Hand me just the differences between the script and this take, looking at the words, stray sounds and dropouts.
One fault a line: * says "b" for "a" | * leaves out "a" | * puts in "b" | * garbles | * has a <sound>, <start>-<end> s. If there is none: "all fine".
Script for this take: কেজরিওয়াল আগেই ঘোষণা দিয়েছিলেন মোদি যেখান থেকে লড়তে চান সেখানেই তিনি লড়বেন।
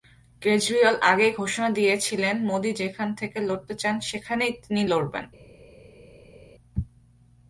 all fine